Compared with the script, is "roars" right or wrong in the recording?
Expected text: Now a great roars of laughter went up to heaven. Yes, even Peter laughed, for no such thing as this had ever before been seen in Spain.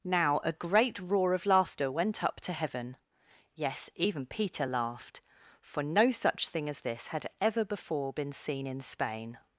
wrong